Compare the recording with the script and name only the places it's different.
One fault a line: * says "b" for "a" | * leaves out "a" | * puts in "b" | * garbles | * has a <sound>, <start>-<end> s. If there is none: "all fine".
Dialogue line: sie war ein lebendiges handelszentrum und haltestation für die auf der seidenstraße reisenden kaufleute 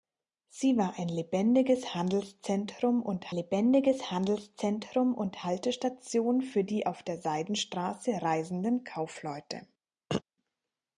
* puts in "lebendiges handelszentrum und"
* has a throat clearing, 10.1-10.2 s